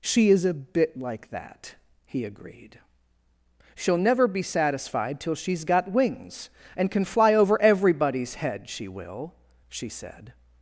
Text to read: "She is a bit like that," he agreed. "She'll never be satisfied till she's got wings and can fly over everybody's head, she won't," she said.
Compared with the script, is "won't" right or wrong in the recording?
wrong